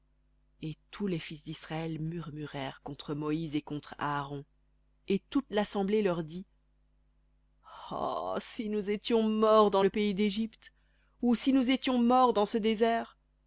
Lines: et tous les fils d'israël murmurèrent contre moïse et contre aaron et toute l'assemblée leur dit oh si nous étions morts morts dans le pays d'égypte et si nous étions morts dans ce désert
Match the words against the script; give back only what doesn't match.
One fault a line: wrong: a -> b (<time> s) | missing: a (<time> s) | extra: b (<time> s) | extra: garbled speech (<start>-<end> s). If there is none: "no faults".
missing: morts (9.7 s)
wrong: et -> ou (11.2 s)